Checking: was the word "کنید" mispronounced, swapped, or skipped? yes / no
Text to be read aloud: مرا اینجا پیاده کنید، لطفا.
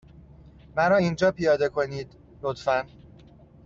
no